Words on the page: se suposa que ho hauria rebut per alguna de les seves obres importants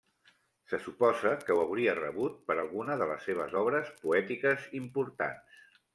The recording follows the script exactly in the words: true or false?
false